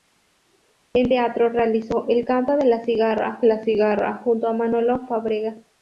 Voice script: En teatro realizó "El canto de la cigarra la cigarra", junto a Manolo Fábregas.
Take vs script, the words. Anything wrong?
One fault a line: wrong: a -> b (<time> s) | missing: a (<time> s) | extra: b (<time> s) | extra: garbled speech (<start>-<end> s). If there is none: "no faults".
no faults